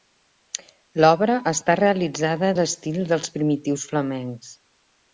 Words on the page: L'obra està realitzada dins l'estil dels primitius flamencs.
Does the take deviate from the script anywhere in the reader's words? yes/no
yes